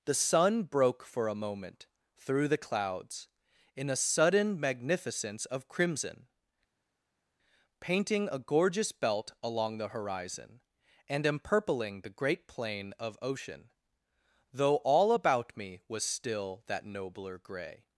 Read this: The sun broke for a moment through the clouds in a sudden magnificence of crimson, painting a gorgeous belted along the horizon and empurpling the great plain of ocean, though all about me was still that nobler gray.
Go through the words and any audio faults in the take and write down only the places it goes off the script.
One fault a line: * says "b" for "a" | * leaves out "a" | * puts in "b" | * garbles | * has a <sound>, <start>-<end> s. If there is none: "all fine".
* says "belt" for "belted"